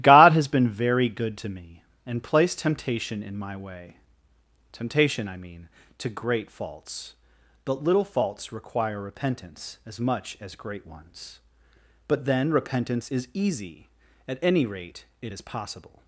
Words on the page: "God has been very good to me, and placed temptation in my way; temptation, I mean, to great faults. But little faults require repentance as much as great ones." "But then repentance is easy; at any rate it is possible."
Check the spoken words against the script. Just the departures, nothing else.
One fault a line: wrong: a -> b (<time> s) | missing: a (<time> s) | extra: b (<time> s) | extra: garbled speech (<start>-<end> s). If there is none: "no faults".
no faults